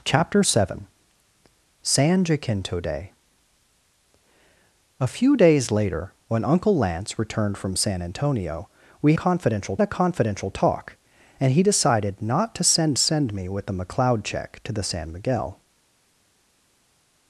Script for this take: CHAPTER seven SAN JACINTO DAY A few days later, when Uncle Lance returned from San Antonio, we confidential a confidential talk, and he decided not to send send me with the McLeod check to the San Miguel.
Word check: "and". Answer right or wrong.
right